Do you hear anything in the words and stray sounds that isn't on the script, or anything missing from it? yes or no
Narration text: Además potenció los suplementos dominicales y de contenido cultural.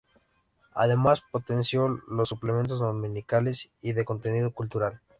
no